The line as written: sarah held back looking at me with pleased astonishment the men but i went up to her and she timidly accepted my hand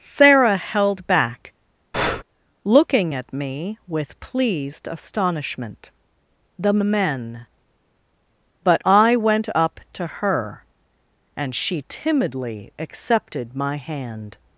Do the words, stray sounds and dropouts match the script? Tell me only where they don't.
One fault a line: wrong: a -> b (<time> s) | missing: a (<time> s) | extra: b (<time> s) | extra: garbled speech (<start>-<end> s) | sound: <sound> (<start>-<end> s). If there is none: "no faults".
sound: breath (1.9-2.2 s)